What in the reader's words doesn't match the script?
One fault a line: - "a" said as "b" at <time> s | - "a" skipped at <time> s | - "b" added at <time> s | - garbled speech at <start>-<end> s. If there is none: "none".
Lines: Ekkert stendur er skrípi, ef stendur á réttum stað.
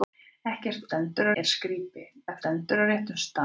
none